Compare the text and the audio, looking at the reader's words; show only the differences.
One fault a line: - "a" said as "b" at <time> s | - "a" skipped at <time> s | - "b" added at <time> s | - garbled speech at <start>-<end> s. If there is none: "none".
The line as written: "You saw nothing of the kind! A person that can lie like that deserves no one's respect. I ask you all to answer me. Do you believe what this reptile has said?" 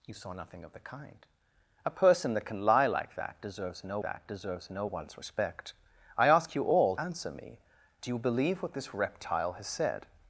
- "that deserves no" added at 4.0 s
- "to" skipped at 6.9 s